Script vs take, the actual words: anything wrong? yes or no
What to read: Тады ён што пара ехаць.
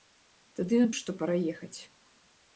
no